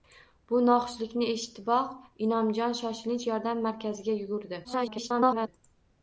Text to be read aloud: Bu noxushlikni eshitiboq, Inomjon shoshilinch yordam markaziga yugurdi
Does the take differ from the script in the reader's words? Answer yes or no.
yes